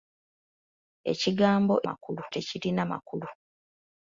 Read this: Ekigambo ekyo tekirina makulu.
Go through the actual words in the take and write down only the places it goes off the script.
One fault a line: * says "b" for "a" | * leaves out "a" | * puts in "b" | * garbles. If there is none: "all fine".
* says "makulu" for "ekyo"